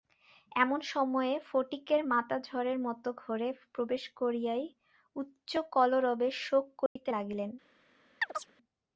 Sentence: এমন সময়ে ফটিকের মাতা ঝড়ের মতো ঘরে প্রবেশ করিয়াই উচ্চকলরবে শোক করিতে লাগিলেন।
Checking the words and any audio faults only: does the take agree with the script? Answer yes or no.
no